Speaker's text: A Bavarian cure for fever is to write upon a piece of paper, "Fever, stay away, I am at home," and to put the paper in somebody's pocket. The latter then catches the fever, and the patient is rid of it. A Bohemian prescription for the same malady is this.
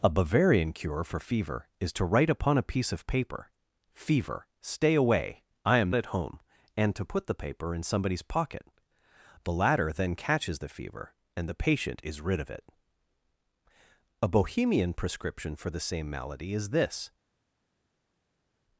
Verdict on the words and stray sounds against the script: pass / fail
pass